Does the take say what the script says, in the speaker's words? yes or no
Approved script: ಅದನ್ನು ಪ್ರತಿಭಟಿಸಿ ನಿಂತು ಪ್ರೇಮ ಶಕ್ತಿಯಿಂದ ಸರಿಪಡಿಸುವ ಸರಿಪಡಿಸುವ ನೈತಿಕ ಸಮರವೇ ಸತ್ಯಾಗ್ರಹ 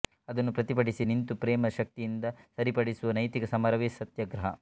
no